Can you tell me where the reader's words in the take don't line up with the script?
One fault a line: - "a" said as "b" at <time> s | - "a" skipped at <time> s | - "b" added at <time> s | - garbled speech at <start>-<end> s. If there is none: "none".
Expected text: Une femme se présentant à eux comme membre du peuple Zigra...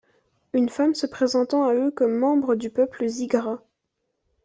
none